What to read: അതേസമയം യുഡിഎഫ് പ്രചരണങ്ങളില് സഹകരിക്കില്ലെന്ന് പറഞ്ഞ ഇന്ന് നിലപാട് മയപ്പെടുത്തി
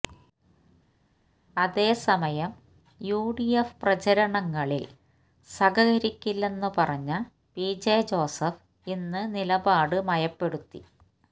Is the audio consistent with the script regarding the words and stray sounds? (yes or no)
no